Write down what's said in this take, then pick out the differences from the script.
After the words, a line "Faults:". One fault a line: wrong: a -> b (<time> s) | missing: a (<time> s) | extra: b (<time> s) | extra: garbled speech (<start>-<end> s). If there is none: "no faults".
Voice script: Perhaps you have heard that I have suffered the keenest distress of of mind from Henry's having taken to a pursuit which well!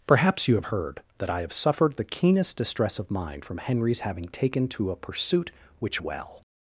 Perhaps you have heard that I have suffered the keenest distress of mind from Henry's having taken to a pursuit which well!
Faults:
missing: of (3.1 s)